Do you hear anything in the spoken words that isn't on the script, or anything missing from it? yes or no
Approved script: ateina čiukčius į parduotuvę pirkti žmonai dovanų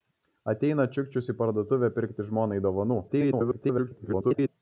yes